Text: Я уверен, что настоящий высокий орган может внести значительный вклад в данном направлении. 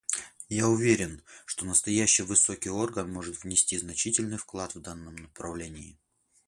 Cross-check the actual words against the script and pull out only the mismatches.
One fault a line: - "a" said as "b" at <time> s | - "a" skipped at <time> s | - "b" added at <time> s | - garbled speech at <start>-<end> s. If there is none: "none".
none